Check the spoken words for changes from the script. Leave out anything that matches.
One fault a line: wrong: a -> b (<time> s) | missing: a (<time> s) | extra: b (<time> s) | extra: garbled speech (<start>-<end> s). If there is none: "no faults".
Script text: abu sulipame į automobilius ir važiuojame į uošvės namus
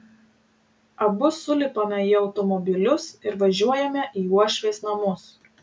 no faults